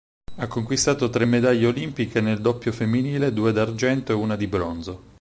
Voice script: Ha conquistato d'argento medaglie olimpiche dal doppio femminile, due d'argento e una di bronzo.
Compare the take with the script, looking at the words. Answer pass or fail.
fail